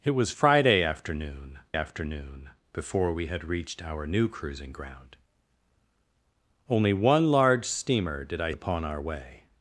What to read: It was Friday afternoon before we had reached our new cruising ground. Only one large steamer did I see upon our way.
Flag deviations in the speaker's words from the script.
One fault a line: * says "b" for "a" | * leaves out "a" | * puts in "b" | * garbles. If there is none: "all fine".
* puts in "afternoon"
* leaves out "see"